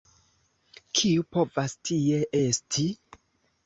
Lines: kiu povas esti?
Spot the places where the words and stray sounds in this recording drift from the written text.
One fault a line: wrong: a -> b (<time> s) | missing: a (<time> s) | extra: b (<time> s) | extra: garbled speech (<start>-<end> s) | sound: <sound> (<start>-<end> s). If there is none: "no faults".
extra: tie (1.9 s)